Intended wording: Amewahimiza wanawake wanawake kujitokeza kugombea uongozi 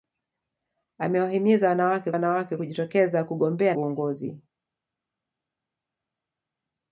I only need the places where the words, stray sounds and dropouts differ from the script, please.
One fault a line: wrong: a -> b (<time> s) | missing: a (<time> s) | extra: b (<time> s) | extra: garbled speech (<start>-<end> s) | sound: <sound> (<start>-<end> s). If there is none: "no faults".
no faults